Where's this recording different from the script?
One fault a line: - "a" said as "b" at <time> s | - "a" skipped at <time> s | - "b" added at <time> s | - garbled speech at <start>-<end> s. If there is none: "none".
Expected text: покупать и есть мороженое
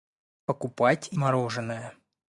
- "есть" skipped at 1.2 s